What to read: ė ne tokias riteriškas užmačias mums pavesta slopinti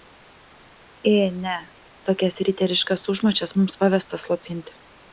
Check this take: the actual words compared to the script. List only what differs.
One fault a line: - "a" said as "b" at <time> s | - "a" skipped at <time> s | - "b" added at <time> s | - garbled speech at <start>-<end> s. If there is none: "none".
none